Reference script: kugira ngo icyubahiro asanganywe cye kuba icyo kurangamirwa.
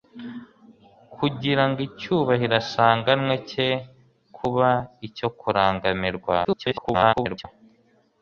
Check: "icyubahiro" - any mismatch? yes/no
no